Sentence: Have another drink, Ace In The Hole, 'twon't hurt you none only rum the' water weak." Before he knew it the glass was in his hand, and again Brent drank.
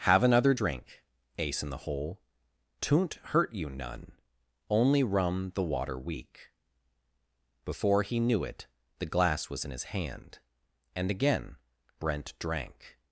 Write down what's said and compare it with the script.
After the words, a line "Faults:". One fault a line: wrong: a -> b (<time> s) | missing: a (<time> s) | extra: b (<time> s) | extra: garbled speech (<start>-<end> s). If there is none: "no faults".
Have another drink, Ace In The Hole, 'twon't hurt you none only rum the' water weak." Before he knew it the glass was in his hand, and again Brent drank.
Faults:
no faults